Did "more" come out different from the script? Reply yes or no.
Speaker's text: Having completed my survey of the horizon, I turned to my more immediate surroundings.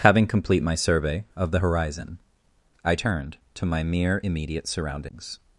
yes